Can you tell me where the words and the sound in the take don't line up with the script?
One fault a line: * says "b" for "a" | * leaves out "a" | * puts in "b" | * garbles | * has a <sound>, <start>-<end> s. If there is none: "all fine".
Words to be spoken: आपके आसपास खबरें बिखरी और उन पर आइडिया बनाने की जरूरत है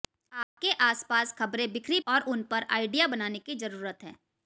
* has a dropout, 0.4-0.6 s